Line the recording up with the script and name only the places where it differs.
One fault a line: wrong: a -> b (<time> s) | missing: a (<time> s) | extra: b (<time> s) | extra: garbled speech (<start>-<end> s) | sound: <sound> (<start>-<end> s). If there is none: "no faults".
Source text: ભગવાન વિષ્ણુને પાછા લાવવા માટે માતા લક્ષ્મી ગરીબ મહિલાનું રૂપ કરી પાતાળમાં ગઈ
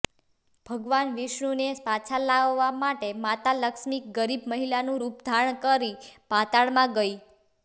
extra: ધારણ (5.3 s)